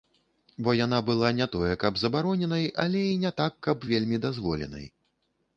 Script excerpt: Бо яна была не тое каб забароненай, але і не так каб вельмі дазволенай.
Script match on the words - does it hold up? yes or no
yes